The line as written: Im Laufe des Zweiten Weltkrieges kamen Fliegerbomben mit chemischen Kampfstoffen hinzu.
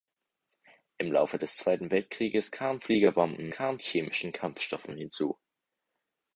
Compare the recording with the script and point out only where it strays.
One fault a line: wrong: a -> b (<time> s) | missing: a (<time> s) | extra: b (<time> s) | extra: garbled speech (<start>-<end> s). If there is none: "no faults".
wrong: mit -> kamen (3.5 s)